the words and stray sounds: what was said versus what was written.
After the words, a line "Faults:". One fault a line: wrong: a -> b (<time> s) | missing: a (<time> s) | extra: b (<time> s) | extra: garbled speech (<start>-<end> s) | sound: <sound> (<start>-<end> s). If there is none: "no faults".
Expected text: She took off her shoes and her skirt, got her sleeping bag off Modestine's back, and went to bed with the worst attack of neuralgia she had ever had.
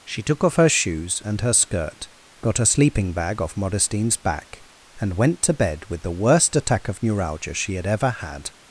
She took off her shoes and her skirt, got a sleeping bag off Modestine's back, and went to bed with the worst attack of neuralgia she had ever had.
Faults:
wrong: her -> a (2.6 s)